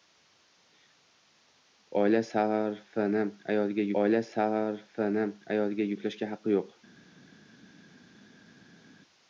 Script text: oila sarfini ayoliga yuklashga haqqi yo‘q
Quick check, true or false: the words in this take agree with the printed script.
false